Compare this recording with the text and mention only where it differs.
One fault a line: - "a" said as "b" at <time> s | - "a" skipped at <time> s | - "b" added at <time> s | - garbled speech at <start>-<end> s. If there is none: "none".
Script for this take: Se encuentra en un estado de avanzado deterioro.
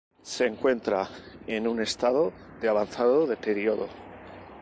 none